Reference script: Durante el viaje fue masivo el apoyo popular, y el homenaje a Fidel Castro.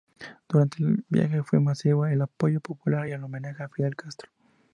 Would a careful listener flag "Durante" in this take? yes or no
no